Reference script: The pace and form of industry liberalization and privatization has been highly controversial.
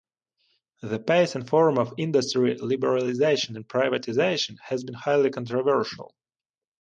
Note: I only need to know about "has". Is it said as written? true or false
true